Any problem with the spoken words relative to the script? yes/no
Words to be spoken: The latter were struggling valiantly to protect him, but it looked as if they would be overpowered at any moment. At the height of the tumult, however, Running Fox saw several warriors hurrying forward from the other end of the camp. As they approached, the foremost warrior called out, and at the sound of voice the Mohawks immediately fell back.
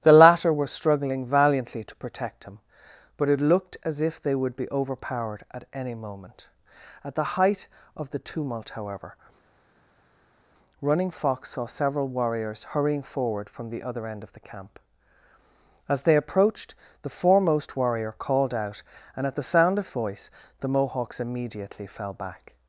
no